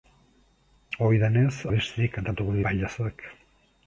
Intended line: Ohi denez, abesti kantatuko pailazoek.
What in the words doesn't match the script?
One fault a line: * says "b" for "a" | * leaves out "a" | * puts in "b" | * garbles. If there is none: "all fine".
all fine